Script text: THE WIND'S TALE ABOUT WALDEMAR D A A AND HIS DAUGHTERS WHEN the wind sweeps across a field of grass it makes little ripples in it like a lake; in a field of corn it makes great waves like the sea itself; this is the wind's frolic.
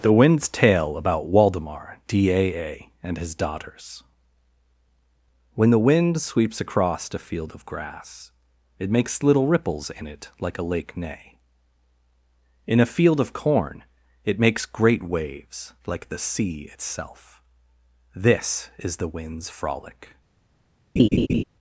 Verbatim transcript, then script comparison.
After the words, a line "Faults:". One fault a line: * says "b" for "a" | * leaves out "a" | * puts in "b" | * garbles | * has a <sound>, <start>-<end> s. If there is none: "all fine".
THE WIND'S TALE ABOUT WALDEMAR D A A AND HIS DAUGHTERS WHEN the wind sweeps across a field of grass it makes little ripples in it like a lake; neigh in a field of corn it makes great waves like the sea itself; this is the wind's frolic.
Faults:
* puts in "neigh"
* has a laugh, 21.0-21.4 s